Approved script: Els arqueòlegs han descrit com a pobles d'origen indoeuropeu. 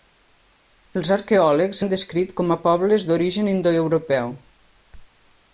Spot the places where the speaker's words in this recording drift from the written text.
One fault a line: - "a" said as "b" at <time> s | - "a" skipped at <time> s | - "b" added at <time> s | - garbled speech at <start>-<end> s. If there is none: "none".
none